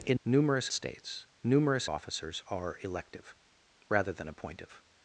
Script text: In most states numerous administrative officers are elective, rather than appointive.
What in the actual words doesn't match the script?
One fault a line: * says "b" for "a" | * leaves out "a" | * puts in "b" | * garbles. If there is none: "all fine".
* says "numerous" for "most"
* leaves out "administrative"